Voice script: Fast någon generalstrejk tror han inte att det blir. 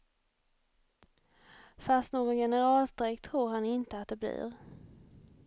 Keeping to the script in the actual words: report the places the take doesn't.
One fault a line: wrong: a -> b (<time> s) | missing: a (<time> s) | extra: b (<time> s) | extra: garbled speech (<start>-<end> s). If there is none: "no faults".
no faults